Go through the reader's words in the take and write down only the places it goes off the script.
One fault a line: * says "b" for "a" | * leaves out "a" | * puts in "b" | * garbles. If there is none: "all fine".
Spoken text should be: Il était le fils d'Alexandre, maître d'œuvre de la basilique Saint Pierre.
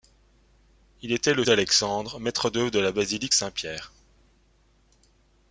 * leaves out "fils"